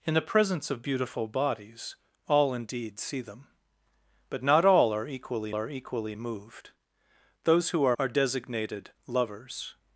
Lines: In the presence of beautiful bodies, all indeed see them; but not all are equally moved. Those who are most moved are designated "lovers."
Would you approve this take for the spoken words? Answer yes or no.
no